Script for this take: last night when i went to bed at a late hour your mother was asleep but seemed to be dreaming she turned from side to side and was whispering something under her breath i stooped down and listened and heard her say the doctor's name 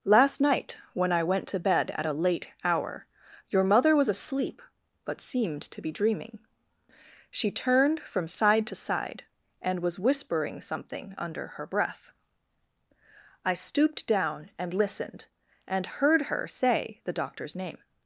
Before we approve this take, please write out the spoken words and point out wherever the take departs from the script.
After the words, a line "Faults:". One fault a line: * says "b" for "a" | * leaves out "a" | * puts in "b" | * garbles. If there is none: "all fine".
last night when i went to bed at a late hour your mother was asleep but seemed to be dreaming she turned from side to side and was whispering something under her breath i stooped down and listened and heard her say the doctor's name
Faults:
all fine